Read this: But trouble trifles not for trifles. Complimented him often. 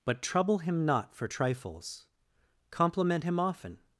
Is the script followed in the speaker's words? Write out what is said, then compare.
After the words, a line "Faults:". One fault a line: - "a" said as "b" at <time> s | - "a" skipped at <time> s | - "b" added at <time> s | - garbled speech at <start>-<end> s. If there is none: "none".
But trouble him not for trifles. Compliment him often.
Faults:
- "trifles" said as "him" at 0.6 s
- "Complimented" said as "Compliment" at 2.7 s